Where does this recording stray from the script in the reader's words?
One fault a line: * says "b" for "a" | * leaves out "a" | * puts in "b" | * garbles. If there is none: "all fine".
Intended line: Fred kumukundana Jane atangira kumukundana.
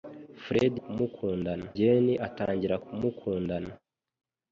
all fine